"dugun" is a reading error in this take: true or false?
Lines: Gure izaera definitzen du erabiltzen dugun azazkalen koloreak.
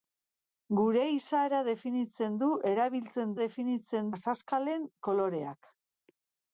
true